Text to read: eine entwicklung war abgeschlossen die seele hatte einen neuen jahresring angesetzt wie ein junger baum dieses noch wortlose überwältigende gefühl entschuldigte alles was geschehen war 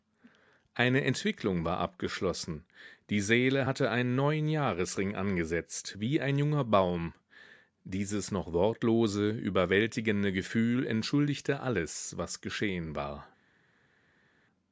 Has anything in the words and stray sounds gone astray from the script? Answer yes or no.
no